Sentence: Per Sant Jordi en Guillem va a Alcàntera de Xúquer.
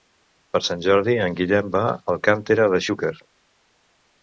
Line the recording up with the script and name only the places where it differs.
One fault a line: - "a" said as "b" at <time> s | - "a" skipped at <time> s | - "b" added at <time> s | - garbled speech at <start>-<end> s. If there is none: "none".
none